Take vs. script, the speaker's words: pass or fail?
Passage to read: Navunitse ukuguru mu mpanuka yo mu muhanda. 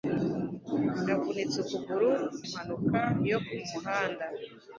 fail